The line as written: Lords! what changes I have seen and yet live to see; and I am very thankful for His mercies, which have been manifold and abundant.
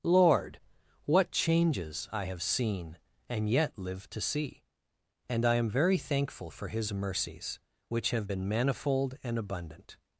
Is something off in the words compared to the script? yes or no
yes